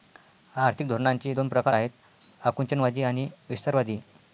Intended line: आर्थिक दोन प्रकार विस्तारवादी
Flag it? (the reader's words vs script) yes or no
yes